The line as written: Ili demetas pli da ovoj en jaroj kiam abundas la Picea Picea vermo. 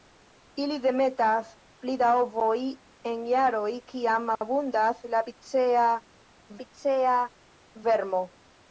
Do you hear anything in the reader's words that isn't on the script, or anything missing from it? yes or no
no